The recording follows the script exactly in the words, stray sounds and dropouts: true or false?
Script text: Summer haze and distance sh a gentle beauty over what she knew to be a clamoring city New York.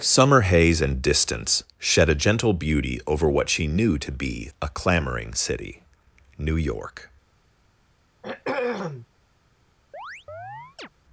false